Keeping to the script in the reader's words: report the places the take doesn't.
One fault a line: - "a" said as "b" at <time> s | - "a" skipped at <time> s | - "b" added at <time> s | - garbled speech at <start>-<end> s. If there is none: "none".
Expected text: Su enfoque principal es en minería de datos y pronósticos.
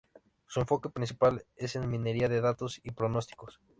none